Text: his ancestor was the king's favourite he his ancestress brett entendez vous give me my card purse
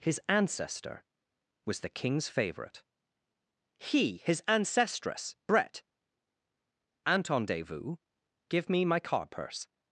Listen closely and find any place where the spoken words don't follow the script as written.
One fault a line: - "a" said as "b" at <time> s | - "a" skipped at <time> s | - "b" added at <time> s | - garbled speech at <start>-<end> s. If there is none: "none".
none